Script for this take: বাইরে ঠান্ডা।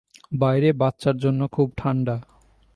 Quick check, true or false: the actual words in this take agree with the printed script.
false